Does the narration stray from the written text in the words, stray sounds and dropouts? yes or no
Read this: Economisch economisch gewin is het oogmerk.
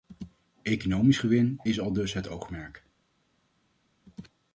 yes